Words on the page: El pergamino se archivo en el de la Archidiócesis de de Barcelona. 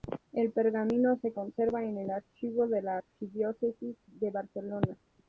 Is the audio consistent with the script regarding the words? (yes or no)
no